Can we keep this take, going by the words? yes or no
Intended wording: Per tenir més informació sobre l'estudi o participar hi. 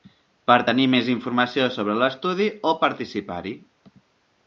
yes